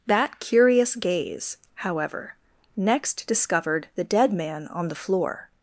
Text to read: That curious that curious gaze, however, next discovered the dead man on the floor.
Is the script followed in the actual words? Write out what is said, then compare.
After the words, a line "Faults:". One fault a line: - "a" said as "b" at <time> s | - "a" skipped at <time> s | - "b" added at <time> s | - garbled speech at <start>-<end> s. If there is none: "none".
That curious gaze, however, next discovered the dead man on the floor.
Faults:
- "that curious" skipped at 0.9 s